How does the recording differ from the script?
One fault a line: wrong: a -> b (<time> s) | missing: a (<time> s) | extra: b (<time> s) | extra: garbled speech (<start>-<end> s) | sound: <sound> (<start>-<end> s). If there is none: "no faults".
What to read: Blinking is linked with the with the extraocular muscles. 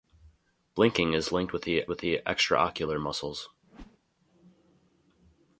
sound: whoosh (3.6-4.0 s)